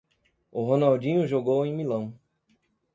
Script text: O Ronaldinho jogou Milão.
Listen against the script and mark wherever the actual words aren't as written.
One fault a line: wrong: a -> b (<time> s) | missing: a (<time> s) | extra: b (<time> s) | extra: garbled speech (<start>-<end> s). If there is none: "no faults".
extra: em (1.6 s)